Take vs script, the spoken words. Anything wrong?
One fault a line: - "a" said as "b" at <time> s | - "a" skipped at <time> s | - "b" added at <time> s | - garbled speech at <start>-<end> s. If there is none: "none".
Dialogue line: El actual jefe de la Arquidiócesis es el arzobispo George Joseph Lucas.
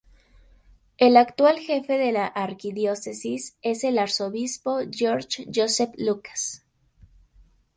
none